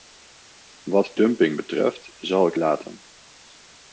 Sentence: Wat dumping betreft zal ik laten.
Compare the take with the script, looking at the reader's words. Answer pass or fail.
pass